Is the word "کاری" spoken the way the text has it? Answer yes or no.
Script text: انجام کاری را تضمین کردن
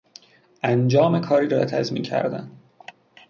yes